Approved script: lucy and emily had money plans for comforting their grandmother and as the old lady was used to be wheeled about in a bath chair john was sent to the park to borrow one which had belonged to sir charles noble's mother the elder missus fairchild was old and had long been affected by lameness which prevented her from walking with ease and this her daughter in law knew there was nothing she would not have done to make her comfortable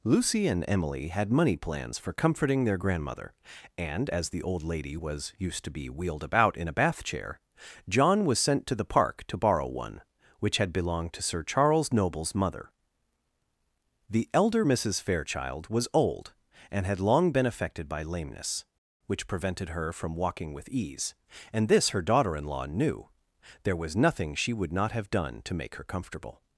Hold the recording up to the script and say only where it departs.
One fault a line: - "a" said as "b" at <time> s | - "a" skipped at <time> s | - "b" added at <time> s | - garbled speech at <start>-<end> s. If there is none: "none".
none